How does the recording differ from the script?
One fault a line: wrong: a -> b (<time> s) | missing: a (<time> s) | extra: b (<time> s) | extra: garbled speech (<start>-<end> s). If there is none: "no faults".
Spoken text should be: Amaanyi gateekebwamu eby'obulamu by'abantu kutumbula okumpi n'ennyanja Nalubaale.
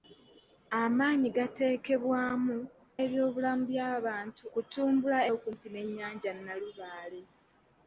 no faults